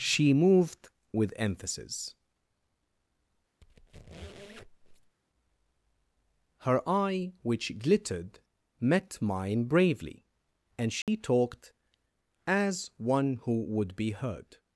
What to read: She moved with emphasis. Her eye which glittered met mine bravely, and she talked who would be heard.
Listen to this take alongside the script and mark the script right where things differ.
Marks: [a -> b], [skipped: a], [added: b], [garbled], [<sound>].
She moved with emphasis. [squeak] Her eye which glittered met mine bravely, and she [dropout] talked [added: as one] who would be heard.